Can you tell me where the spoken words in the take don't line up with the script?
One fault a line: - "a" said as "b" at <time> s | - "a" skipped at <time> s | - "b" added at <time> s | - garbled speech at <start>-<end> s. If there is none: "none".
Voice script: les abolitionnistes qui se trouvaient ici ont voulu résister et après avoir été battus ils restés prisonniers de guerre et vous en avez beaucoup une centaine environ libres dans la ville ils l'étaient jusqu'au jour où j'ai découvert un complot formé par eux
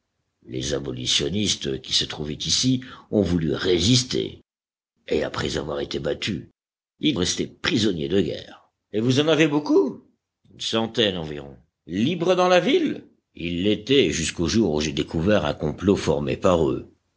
none